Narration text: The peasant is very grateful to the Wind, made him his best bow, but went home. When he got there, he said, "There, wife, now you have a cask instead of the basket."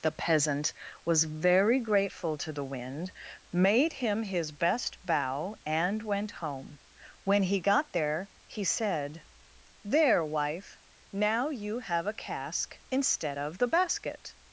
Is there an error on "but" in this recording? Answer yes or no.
yes